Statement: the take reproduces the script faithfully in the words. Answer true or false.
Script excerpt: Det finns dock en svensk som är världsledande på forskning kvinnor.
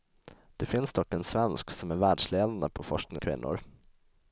true